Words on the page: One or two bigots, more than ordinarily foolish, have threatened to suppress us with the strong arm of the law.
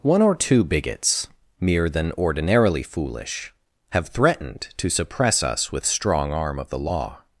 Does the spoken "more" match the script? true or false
false